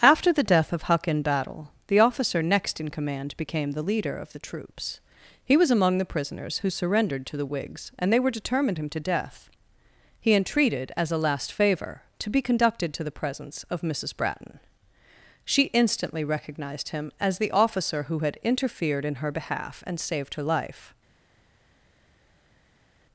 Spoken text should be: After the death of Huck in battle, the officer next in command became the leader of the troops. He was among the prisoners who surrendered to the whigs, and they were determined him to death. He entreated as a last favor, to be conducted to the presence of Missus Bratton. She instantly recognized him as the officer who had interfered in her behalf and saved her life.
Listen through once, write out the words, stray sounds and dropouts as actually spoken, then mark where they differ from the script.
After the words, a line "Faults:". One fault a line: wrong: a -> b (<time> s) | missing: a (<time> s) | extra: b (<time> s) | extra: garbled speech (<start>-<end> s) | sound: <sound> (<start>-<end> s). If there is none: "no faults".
After the death of Huck in battle, the officer next in command became the leader of the troops. He was among the prisoners who surrendered to the whigs, and they were determined him to death. He entreated as a last favor, to be conducted to the presence of Missus Bratton. She instantly recognized him as the officer who had interfered in her behalf and saved her life.
Faults:
no faults